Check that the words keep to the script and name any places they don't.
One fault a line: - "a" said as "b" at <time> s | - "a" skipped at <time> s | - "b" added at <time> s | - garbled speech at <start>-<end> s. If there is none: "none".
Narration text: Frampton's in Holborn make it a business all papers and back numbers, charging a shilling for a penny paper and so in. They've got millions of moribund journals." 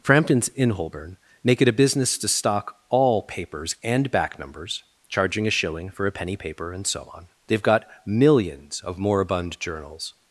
- "to stock" added at 2.2 s
- "in" said as "on" at 7.1 s